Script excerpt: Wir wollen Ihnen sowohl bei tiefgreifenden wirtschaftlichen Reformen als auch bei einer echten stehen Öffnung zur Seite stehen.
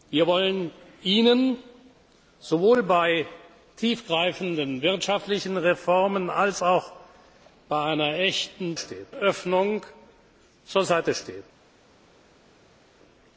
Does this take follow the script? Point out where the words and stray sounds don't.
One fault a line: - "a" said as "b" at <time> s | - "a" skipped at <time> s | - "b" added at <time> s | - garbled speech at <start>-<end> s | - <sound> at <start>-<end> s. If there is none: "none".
none